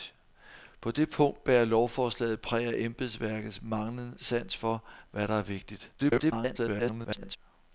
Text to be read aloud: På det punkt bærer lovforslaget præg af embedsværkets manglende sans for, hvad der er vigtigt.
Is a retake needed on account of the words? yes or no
yes